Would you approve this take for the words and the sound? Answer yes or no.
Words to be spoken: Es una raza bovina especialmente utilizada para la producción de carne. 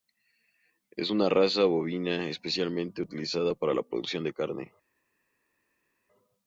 yes